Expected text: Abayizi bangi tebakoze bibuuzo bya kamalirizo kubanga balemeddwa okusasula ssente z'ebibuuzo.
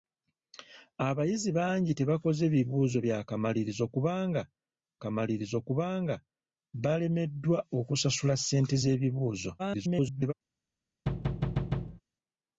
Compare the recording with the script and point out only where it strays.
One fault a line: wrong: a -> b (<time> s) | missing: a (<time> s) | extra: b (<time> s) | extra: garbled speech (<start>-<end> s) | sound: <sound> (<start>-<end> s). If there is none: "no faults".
extra: kamalirizo kubanga (5.0 s)
extra: garbled speech (9.6-10.3 s)
sound: thud (11.1-12.0 s)